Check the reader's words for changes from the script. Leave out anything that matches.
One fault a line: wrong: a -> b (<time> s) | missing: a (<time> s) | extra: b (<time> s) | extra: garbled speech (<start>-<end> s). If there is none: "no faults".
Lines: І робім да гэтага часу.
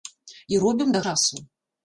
missing: гэтага (1.0 s)